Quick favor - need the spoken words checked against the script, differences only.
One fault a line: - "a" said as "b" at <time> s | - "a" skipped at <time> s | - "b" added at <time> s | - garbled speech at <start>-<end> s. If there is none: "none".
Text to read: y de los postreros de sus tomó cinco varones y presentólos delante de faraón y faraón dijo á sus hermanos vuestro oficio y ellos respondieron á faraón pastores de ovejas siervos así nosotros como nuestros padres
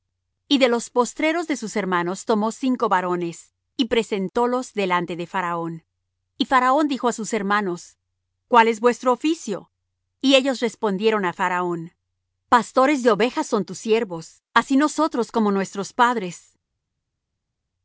- "hermanos" added at 1.8 s
- "cuál es" added at 8.5 s
- "son tus" added at 13.5 s